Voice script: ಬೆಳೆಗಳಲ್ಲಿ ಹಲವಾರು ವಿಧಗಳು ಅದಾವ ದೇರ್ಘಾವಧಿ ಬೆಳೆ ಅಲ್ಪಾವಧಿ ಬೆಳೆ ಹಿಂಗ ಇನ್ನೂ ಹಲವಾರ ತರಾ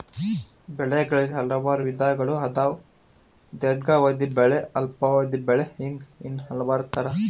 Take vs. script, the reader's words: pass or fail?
pass